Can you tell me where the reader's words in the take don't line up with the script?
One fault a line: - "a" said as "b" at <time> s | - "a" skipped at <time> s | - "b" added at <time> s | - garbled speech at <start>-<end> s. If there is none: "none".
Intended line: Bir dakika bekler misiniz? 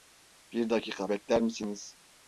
none